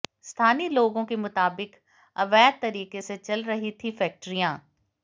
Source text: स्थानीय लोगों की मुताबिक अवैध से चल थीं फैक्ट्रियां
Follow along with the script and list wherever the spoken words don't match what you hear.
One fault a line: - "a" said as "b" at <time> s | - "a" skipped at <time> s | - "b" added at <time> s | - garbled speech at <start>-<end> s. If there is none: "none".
- "की" said as "के" at 1.0 s
- "तरीके" added at 2.6 s
- "रही" added at 3.4 s